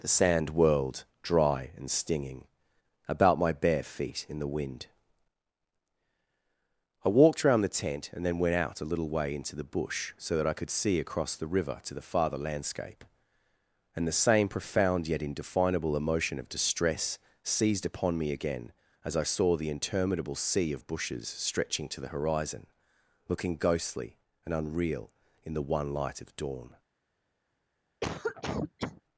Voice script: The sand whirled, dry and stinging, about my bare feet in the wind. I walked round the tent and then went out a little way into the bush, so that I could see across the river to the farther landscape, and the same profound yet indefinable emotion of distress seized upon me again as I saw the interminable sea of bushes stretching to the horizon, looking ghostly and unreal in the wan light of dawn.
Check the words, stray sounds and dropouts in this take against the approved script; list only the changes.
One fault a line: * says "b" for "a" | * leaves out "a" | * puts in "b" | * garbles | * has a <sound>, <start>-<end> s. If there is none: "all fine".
* says "one" for "wan"
* has a cough, 28.0-29.0 s